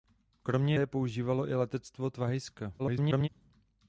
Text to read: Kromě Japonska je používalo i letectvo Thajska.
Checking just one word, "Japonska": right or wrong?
wrong